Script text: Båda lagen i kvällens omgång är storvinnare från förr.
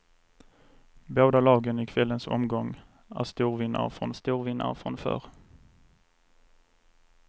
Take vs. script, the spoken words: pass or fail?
fail